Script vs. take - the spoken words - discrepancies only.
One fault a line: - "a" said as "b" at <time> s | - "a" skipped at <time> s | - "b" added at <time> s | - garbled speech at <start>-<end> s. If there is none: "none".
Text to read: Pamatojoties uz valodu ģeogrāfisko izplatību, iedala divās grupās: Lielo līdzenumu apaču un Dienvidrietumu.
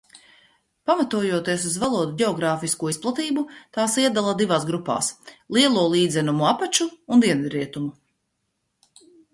- "tās" added at 3.8 s